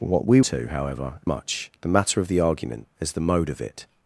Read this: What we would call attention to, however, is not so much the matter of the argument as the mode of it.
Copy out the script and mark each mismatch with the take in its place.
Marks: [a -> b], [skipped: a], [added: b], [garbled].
What we [skipped: would call attention] to, however, [skipped: is not so] much the matter of the argument as the mode of it.